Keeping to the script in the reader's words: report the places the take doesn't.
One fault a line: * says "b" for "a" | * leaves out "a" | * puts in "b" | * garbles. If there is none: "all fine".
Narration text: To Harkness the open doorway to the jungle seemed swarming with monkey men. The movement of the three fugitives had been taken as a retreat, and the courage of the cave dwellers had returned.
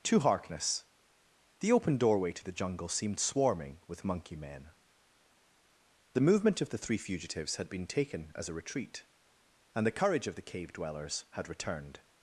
all fine